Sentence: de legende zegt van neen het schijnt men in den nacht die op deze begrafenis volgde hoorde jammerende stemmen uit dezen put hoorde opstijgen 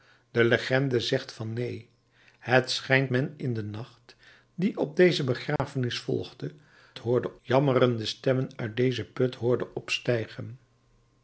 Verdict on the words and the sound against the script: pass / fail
fail